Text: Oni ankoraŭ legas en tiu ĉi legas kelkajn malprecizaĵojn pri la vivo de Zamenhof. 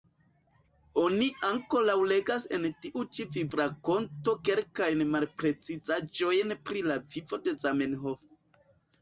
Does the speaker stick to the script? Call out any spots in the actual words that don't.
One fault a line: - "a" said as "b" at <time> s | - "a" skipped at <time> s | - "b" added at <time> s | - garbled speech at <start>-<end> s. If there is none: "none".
- "legas" said as "vivrakonto" at 3.4 s